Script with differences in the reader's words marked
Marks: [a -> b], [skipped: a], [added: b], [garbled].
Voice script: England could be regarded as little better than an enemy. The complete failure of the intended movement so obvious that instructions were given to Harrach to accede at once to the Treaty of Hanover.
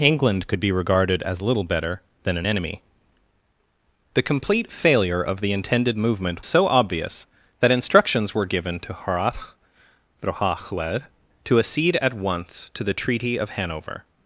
England could be regarded as little better than an enemy. The complete failure of the intended movement so obvious that instructions were given to Harrach to accede at once to the Treaty of Hanover.